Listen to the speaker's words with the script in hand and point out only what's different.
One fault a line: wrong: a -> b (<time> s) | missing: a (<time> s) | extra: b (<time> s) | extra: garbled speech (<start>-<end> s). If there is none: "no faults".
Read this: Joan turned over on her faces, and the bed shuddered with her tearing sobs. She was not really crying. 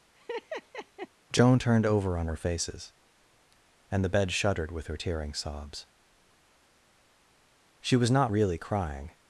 no faults